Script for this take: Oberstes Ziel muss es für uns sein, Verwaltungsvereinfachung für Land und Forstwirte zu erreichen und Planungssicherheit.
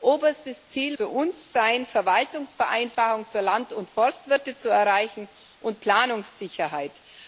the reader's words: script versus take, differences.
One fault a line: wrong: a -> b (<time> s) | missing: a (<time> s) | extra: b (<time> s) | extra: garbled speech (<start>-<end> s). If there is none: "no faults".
missing: muss es (1.0 s)